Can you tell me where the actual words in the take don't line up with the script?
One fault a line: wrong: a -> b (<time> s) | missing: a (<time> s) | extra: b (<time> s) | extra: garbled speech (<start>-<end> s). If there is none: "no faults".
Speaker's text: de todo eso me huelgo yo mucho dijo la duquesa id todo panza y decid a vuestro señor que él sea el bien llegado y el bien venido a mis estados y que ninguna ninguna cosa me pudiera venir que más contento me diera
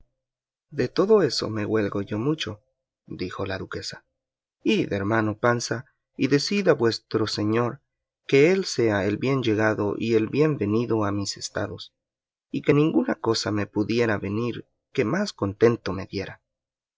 wrong: todo -> hermano (4.9 s)
missing: ninguna (13.2 s)